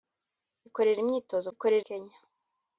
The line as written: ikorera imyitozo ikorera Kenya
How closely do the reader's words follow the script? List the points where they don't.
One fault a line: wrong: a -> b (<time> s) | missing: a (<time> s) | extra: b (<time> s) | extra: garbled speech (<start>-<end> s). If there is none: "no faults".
no faults